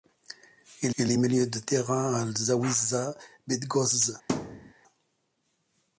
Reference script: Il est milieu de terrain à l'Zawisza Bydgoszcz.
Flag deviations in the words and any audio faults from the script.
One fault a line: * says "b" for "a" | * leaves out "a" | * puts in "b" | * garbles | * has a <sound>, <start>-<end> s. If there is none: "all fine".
* puts in "il"
* has a thud, 4.3-4.7 s